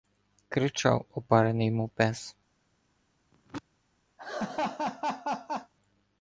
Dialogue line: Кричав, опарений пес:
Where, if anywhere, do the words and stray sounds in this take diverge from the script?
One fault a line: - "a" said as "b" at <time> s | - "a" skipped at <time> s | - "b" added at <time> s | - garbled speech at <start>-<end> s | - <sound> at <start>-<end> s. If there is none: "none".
- "мов" added at 1.7 s
- throat clearing at 3.3-3.6 s
- laugh at 4.2-5.7 s